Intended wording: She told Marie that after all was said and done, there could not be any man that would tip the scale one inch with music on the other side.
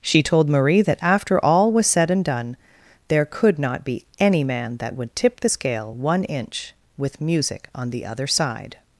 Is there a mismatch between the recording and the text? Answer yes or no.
no